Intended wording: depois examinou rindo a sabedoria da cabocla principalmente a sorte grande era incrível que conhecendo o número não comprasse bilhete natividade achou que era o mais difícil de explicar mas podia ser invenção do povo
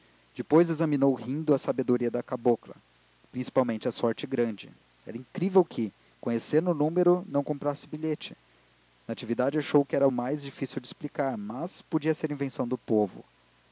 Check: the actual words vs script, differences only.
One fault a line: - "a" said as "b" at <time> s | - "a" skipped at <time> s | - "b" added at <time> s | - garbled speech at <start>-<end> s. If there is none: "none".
none